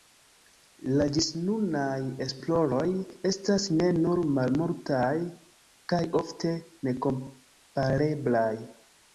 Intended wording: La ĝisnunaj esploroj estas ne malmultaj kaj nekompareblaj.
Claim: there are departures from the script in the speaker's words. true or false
true